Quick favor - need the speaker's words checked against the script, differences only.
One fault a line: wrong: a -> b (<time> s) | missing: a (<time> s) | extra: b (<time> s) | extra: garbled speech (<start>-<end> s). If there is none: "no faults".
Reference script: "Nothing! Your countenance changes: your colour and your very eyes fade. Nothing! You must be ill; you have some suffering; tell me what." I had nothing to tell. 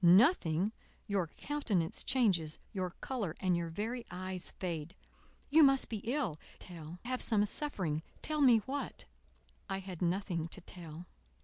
missing: Nothing (5.0 s)
wrong: you -> tell (6.6 s)